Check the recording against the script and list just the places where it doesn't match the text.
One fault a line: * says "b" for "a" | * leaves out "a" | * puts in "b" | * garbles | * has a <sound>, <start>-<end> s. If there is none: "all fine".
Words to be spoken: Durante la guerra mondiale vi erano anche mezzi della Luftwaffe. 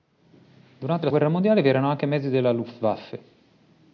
all fine